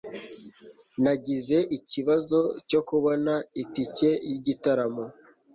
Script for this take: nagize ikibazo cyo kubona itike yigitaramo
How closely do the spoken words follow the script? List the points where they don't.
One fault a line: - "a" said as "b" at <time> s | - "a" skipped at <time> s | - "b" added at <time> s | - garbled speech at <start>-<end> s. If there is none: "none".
none